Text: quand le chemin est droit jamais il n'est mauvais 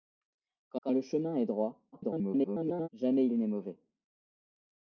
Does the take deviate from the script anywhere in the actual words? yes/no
yes